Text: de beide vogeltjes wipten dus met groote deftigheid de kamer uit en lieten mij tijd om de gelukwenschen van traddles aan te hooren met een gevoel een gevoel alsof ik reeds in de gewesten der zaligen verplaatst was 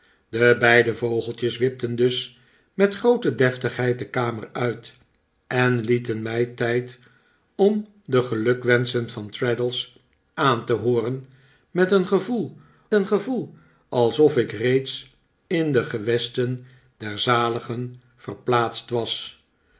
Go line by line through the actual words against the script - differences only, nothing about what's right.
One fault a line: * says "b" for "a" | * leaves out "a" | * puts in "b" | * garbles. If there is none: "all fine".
all fine